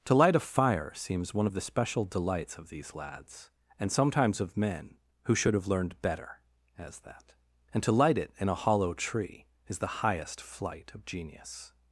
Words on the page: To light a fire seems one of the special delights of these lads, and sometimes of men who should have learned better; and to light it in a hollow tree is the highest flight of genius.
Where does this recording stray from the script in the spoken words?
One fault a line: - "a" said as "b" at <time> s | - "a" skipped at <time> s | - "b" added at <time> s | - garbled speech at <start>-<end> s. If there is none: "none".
- "as that" added at 6.8 s